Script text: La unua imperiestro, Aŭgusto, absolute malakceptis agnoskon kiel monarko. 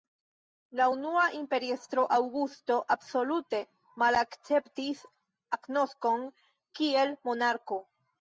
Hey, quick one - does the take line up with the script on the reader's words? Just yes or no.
yes